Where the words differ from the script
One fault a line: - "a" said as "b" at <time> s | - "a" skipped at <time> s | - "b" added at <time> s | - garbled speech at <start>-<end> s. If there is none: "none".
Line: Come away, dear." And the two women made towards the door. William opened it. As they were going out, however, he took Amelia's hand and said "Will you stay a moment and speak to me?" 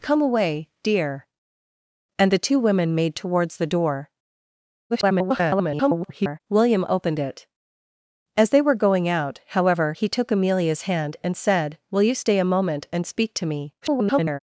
- garbled speech at 4.9-6.4 s
- garbled speech at 13.8-14.4 s